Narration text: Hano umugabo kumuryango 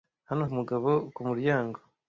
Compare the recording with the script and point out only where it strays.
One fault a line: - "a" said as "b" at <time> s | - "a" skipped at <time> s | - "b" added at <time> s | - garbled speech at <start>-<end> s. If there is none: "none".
none